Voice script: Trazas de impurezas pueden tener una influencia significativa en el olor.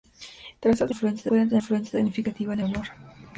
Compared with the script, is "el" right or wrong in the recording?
wrong